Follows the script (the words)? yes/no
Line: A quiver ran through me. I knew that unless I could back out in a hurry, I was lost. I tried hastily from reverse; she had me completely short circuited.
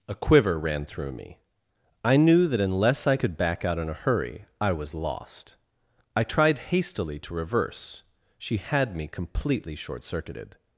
no